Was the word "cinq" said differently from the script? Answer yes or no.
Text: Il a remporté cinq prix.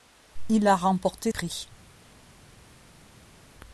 yes